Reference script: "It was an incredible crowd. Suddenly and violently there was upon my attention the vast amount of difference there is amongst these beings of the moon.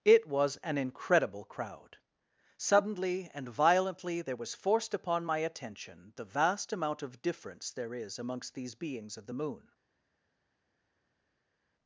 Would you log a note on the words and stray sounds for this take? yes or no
yes